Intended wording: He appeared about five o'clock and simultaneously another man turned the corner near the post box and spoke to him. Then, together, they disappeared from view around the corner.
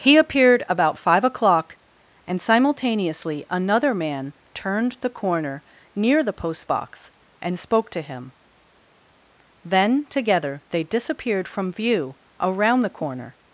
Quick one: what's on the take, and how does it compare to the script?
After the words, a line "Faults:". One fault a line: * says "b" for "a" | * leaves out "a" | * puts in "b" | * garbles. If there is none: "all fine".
He appeared about five o'clock and simultaneously another man turned the corner near the post box and spoke to him. Then, together, they disappeared from view around the corner.
Faults:
all fine